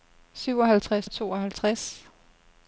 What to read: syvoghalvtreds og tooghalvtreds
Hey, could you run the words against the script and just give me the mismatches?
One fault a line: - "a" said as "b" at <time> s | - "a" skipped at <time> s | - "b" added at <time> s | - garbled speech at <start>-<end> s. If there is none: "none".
none